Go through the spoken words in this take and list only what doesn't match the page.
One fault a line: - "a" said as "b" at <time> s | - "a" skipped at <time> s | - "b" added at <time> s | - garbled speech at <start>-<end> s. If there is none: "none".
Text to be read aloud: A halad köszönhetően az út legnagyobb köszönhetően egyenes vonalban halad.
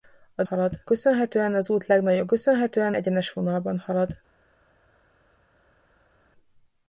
none